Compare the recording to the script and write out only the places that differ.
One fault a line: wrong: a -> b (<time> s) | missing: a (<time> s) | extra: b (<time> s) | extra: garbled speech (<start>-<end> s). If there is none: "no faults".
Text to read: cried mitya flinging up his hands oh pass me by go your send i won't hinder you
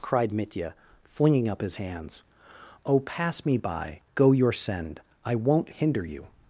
no faults